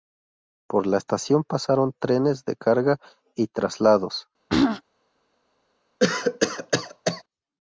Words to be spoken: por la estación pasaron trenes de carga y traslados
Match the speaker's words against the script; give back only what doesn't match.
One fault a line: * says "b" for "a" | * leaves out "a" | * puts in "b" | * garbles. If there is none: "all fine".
all fine